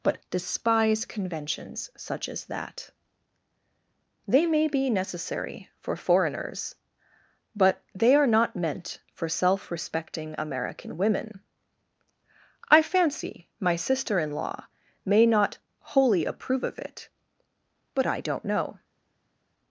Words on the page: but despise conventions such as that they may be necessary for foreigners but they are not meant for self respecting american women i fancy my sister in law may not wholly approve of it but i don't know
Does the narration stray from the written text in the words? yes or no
no